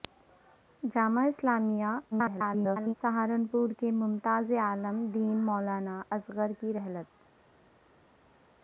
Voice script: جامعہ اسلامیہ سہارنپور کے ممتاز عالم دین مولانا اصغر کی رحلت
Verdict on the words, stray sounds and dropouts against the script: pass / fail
fail